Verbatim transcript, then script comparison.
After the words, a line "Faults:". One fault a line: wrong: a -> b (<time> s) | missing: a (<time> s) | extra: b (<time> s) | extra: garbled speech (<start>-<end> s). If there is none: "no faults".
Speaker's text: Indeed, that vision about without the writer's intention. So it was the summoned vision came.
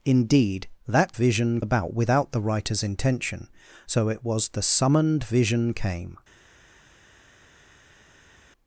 Indeed, that vision about without the writer's intention. So it was the summoned vision came.
Faults:
no faults